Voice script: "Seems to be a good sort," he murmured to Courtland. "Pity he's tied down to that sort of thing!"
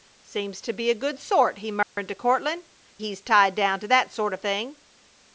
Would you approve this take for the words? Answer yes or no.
no